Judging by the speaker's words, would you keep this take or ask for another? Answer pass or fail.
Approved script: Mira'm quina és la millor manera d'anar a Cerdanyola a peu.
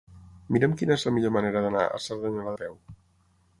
pass